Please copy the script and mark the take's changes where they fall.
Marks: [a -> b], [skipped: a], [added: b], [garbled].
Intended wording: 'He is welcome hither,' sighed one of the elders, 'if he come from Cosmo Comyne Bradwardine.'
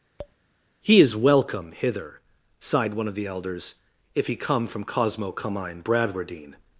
'He is welcome hither,' sighed one of the elders, 'if he come from Cosmo Comyne Bradwardine.'